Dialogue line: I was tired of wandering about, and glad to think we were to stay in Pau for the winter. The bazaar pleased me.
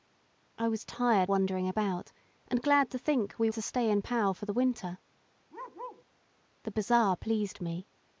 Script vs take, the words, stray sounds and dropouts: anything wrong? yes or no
yes